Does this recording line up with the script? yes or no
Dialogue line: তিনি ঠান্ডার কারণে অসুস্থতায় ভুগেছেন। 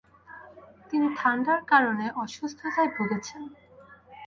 yes